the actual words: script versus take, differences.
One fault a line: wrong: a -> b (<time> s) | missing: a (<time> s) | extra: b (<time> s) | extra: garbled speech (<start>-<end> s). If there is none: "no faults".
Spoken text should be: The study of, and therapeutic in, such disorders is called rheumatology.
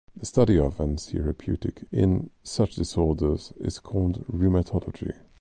no faults